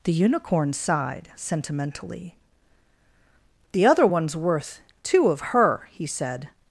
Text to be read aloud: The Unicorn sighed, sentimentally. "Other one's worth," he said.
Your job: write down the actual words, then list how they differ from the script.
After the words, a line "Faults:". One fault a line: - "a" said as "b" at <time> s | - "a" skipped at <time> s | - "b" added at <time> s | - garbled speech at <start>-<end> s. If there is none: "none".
The Unicorn sighed, sentimentally. "The other one's worth two of her," he said.
Faults:
- "The" added at 3.7 s
- "two of her" added at 5.0 s